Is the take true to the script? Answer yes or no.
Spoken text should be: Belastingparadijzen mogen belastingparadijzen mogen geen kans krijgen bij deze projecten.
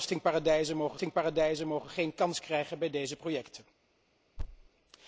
yes